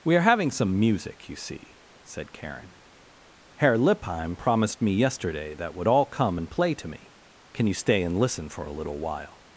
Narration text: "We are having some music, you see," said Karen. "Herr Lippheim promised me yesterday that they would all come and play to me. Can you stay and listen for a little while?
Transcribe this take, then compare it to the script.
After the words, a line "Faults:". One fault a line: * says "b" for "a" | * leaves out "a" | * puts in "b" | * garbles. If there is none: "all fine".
"We are having some music, you see," said Karen. "Herr Lippheim promised me yesterday that would all come and play to me. Can you stay and listen for a little while?
Faults:
* leaves out "they"